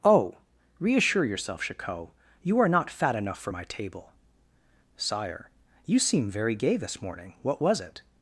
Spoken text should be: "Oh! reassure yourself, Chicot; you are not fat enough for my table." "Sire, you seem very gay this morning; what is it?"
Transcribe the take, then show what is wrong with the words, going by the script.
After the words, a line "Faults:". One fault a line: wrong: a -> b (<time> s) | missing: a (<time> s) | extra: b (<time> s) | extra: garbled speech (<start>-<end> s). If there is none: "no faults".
"Oh! reassure yourself, Chicot; you are not fat enough for my table." "Sire, you seem very gay this morning; what was it?"
Faults:
wrong: is -> was (7.6 s)